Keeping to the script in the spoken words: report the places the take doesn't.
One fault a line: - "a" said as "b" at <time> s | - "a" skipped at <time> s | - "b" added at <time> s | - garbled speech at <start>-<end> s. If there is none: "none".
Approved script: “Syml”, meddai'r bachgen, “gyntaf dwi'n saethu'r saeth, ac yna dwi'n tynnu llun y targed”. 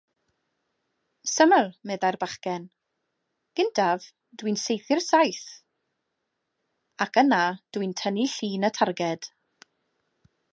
none